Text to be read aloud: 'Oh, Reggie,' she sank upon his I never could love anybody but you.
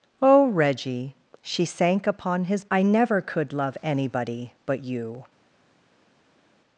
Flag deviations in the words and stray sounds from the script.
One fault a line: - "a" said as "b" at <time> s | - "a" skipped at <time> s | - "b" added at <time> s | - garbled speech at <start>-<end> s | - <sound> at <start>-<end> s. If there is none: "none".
none